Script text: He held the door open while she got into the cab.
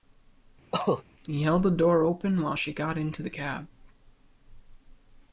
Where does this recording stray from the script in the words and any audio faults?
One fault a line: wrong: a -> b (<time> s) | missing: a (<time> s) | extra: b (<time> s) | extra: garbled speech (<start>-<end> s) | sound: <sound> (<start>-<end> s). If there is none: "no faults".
sound: cough (0.7-1.0 s)